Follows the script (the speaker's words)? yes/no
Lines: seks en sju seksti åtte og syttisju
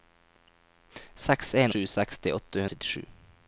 yes